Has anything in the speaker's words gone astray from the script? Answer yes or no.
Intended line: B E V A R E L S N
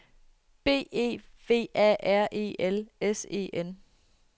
yes